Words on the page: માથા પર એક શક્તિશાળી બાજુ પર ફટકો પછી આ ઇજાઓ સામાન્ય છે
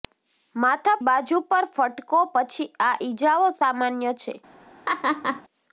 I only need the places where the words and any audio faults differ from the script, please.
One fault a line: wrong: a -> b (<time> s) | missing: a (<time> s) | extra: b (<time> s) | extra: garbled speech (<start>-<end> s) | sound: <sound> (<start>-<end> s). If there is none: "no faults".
missing: પર એક શક્તિશાળી (0.9 s)
sound: laugh (4.9-5.4 s)